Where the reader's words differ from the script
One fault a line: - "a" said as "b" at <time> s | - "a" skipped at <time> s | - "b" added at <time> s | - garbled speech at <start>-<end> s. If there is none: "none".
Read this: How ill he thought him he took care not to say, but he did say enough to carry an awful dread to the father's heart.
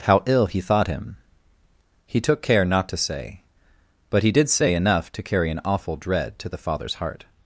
none